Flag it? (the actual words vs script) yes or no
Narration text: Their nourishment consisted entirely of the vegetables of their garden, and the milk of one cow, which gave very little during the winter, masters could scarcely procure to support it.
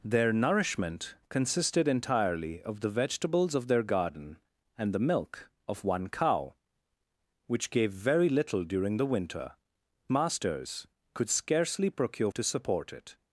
no